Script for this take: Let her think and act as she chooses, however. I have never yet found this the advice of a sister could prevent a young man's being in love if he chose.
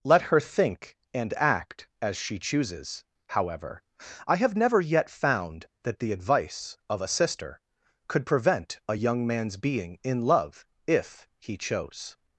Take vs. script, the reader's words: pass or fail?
fail